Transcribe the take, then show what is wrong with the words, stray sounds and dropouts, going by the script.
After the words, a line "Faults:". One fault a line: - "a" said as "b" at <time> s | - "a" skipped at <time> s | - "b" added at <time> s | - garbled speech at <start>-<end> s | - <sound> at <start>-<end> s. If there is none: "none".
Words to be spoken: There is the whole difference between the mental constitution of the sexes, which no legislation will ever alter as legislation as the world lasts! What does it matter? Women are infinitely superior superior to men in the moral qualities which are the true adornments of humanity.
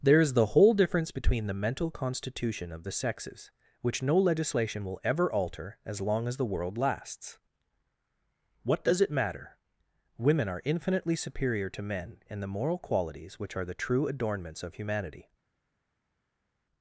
There is the whole difference between the mental constitution of the sexes, which no legislation will ever alter as long as the world lasts! What does it matter? Women are infinitely superior to men in the moral qualities which are the true adornments of humanity.
Faults:
- "legislation" said as "long" at 6.0 s
- "superior" skipped at 11.7 s